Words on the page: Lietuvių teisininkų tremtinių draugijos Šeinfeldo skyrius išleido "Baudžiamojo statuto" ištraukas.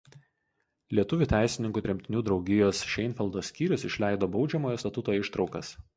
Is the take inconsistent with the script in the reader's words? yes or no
no